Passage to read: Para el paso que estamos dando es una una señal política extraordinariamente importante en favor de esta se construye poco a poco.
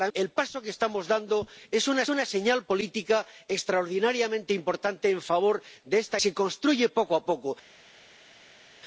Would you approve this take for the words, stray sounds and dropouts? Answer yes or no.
yes